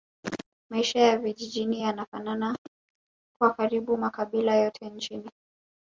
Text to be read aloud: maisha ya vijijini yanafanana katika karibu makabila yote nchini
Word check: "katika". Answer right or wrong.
wrong